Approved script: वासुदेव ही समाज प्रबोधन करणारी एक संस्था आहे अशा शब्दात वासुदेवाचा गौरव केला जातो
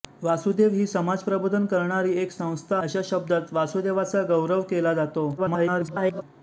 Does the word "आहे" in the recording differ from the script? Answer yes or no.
yes